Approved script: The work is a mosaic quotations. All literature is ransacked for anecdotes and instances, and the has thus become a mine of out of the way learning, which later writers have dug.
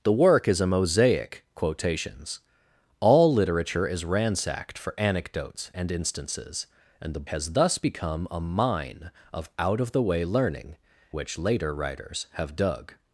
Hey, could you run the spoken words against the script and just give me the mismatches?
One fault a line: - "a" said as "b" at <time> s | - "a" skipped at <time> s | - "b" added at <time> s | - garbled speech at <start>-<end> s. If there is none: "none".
none